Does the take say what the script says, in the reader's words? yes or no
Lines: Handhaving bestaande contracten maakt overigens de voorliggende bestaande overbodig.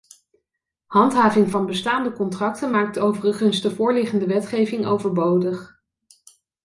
no